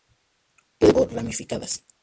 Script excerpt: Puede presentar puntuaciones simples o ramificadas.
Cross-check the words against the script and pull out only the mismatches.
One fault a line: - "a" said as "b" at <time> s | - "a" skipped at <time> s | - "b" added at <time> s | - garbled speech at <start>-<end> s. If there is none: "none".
- "presentar puntuaciones simples" skipped at 0.9 s